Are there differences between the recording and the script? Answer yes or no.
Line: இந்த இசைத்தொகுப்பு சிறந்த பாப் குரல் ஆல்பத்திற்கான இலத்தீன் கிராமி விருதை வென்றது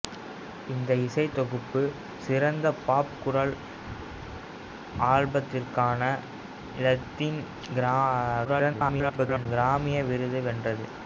yes